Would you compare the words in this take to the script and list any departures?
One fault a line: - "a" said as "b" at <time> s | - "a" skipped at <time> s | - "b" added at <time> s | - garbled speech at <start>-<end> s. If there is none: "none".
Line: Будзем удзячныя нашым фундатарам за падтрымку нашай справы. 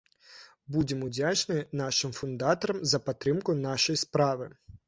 none